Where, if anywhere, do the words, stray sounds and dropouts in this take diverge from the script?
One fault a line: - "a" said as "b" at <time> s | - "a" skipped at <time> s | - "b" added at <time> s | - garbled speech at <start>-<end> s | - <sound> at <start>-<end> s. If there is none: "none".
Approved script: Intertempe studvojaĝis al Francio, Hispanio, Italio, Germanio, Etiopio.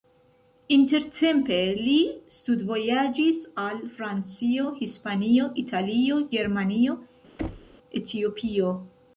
- "li" added at 1.8 s
- thud at 7.4-7.8 s